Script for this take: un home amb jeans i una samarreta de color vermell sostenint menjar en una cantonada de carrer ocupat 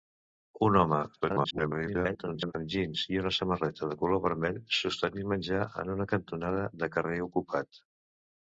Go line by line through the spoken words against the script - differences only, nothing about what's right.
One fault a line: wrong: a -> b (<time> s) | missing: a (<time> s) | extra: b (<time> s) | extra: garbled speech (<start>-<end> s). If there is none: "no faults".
extra: garbled speech (1.2-2.5 s)